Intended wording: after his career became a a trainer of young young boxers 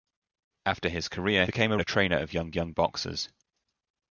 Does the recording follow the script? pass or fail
pass